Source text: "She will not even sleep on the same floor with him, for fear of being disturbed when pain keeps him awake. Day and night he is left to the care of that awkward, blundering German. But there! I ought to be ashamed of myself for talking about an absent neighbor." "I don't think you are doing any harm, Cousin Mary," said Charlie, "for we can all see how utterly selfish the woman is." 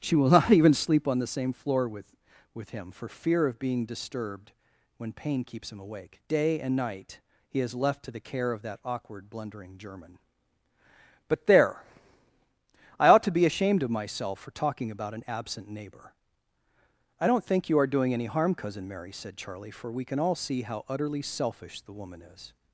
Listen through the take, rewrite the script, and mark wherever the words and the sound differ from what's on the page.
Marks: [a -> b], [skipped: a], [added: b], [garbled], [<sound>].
"She will not even sleep on the same floor with [added: with] him, for fear of being disturbed when pain keeps him awake. Day and night he is left to the care of that awkward, blundering German. But there! I ought to be ashamed of myself for talking about an absent neighbor." "I don't think you are doing any harm, Cousin Mary," said Charlie, "for we can all see how utterly selfish the woman is."